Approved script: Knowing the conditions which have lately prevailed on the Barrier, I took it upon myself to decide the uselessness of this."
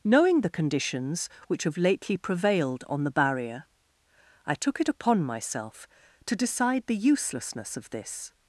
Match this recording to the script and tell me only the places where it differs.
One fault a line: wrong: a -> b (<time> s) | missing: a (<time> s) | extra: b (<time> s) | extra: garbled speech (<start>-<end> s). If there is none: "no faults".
no faults